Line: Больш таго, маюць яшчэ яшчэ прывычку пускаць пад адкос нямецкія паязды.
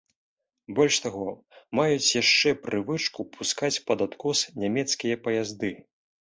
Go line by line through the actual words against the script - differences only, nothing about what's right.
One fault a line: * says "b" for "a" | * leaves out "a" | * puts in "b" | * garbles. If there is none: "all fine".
* leaves out "яшчэ"